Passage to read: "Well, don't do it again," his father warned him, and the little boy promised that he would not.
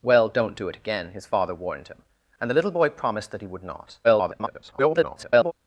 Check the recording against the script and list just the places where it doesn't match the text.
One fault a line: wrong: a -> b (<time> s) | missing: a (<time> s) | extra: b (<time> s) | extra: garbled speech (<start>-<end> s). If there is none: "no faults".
extra: garbled speech (4.0-5.5 s)